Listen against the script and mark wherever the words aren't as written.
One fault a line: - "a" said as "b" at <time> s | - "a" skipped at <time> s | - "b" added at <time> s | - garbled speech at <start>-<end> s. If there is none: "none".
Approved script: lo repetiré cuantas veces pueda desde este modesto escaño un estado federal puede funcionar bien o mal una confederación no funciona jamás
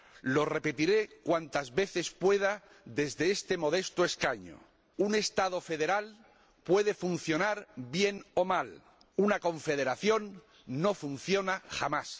none